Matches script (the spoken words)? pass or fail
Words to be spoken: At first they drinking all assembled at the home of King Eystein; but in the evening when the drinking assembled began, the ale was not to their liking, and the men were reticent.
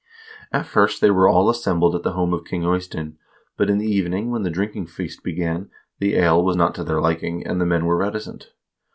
fail